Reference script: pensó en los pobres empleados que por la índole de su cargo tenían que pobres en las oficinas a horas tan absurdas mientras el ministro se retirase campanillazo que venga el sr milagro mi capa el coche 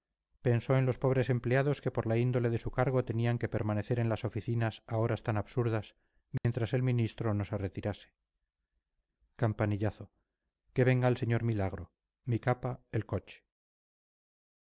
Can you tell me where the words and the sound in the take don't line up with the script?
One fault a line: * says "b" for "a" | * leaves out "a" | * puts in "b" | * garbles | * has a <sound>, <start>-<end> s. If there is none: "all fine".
* says "permanecer" for "pobres"
* has a dropout, 6.4-6.4 s
* puts in "no"